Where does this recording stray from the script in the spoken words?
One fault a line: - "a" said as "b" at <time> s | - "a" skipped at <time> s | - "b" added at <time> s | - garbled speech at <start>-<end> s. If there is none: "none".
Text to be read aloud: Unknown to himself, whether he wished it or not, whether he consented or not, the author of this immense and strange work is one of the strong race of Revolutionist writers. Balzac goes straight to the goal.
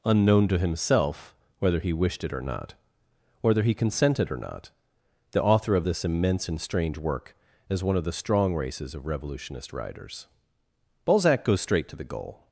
- "race" said as "races" at 8.5 s